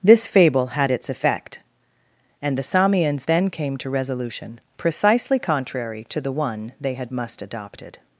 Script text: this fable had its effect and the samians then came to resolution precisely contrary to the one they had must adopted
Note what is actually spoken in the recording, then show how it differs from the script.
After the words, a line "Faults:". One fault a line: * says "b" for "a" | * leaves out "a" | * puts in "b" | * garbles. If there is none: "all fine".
this fable had its effect and the samians then came to resolution precisely contrary to the one they had must adopted
Faults:
all fine